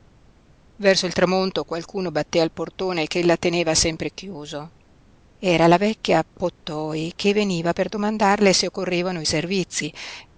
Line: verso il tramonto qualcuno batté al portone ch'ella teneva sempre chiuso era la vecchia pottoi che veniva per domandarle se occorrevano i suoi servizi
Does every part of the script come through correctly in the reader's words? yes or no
no